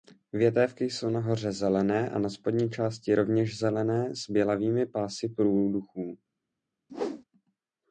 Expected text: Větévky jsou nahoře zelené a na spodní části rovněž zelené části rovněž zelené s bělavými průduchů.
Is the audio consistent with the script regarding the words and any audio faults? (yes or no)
no